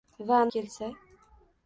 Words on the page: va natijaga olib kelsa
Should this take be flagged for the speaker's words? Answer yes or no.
yes